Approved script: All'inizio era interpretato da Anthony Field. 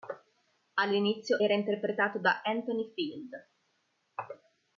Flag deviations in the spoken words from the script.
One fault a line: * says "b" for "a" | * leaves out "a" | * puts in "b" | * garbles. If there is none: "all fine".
all fine